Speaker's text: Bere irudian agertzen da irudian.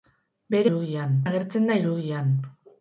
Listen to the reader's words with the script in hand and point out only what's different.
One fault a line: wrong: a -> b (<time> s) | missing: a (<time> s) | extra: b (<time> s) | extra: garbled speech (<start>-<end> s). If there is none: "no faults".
no faults